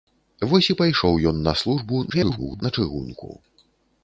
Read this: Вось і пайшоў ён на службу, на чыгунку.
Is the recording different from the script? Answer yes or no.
yes